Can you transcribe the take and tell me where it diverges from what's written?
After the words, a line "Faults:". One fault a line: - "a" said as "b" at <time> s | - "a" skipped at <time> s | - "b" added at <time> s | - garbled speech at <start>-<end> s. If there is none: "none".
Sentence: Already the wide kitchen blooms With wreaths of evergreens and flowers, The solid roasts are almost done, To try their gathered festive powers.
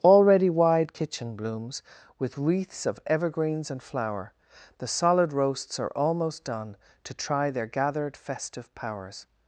Already wide kitchen blooms With wreaths of evergreens and flower, The solid roasts are almost done, To try their gathered festive powers.
Faults:
- "the" skipped at 0.5 s
- "flowers" said as "flower" at 3.8 s